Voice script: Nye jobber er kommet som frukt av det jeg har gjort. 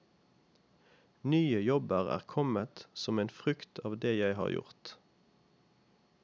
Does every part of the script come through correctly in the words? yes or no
no